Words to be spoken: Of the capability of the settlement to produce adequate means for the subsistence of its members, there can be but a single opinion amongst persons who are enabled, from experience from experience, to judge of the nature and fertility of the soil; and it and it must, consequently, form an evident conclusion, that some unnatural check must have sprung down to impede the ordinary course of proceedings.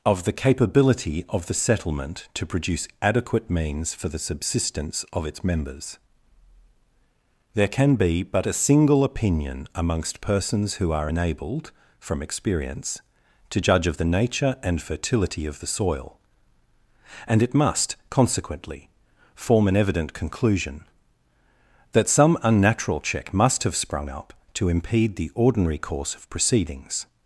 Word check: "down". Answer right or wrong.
wrong